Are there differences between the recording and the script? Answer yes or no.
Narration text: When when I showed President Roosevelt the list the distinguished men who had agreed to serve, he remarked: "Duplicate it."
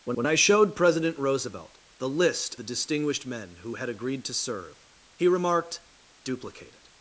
no